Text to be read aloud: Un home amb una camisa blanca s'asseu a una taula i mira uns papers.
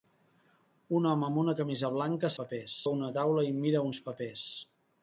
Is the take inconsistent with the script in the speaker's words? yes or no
yes